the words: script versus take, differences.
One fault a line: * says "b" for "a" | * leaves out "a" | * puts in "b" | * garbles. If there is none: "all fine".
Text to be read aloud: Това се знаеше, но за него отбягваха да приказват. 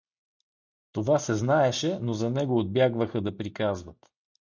all fine